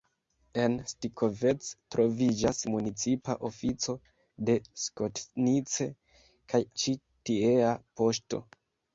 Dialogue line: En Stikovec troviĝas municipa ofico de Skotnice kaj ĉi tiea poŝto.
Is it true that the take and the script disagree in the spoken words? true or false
false